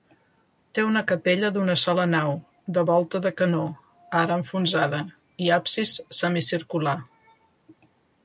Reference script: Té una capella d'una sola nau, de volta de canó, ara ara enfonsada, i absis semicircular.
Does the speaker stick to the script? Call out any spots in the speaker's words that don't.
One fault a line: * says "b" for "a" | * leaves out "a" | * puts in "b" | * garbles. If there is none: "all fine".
* leaves out "ara"